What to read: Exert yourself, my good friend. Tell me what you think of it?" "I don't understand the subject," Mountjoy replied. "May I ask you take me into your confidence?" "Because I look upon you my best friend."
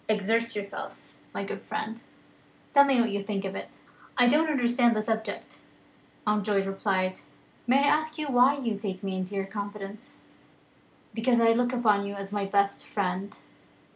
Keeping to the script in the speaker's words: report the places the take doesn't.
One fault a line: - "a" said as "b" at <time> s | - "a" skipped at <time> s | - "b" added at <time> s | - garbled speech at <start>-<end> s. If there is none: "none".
- "why" added at 8.2 s
- "as" added at 12.1 s